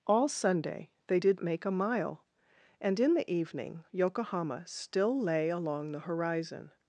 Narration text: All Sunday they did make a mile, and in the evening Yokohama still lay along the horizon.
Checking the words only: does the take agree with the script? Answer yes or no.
yes